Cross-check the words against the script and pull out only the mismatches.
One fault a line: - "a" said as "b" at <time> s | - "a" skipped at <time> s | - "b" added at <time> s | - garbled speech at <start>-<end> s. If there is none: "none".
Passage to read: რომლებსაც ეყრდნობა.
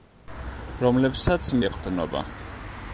none